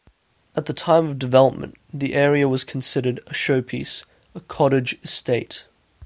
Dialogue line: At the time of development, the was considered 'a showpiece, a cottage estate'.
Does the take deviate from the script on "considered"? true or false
false